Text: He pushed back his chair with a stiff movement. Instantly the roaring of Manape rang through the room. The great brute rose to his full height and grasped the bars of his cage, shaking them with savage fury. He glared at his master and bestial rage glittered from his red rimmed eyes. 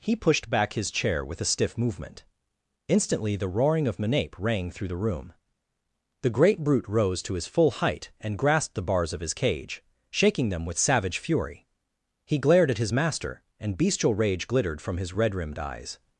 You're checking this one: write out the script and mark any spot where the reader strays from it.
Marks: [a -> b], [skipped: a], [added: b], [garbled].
He pushed back his chair with a stiff movement. Instantly the roaring of Manape rang through the room. The great brute rose to his full height and grasped the bars of his cage, shaking them with savage fury. He glared at his master and bestial rage glittered from his red rimmed eyes.